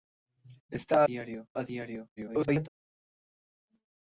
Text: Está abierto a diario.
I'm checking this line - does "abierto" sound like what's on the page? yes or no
no